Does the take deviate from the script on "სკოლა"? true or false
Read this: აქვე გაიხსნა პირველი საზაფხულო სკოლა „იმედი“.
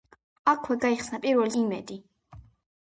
true